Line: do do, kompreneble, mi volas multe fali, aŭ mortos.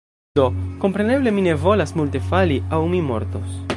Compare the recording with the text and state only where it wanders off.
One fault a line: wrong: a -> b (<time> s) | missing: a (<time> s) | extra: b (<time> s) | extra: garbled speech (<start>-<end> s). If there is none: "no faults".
missing: do (0.5 s)
extra: ne (1.4 s)
extra: mi (2.9 s)